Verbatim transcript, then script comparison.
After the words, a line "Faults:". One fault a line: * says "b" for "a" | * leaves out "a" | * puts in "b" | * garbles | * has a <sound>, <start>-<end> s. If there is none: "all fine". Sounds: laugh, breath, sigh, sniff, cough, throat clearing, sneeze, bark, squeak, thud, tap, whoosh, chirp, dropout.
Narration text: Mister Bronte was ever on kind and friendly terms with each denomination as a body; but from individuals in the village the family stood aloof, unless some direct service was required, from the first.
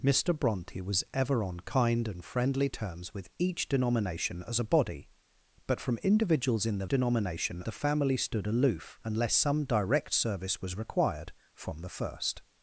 Mister Bronte was ever on kind and friendly terms with each denomination as a body; but from individuals in the denomination the family stood aloof, unless some direct service was required, from the first.
Faults:
* says "denomination" for "village"